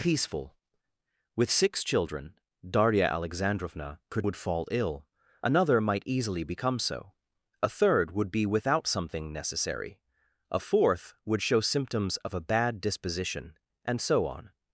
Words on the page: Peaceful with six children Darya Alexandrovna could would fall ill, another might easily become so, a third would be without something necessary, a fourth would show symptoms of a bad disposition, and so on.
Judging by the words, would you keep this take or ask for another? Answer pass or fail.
pass